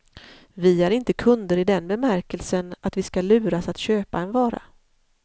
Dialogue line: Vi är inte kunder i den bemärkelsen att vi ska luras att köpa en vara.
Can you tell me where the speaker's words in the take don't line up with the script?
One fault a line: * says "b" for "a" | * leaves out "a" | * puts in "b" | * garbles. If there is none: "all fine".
all fine